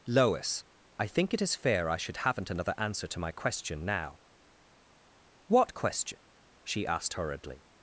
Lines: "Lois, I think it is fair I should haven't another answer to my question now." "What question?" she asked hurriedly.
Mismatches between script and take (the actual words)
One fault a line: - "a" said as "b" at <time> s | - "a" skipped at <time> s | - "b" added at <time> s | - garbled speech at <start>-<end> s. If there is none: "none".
none